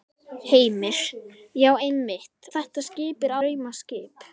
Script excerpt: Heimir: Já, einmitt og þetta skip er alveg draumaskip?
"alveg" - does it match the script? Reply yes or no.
no